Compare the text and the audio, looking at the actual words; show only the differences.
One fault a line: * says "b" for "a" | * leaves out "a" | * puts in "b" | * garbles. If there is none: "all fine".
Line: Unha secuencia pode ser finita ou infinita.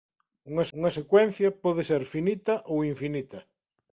* puts in "unha"